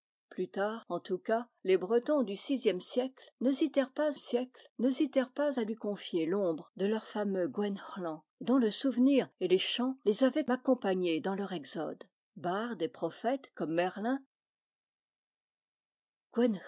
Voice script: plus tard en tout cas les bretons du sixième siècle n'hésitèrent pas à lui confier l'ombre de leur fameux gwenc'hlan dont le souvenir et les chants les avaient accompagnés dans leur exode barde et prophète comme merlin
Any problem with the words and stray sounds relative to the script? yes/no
yes